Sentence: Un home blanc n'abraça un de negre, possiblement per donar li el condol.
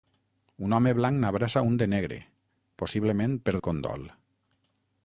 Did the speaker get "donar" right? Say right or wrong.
wrong